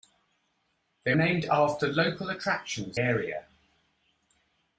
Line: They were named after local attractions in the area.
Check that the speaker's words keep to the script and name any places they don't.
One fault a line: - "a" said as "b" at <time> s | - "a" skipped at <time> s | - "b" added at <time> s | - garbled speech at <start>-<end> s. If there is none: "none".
- "were" skipped at 1.1 s
- "in the" skipped at 3.0 s